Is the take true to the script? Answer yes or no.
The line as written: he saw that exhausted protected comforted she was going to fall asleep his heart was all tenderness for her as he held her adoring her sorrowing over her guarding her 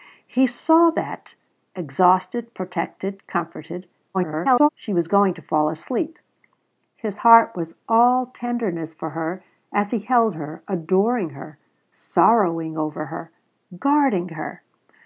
no